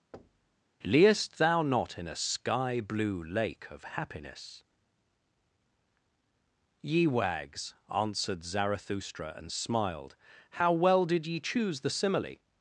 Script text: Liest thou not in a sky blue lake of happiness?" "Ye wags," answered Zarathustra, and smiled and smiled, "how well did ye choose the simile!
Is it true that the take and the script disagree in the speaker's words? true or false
true